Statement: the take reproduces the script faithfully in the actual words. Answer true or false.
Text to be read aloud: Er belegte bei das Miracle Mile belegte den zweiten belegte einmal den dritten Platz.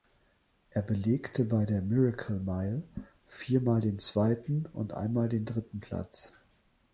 false